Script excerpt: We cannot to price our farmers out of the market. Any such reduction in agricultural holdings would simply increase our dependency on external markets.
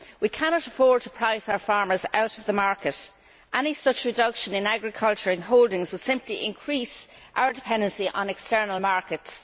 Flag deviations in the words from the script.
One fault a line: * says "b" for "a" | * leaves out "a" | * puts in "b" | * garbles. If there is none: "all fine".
* puts in "afford"